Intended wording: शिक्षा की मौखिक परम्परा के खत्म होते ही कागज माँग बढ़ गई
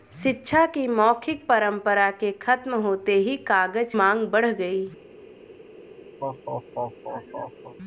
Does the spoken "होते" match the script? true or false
true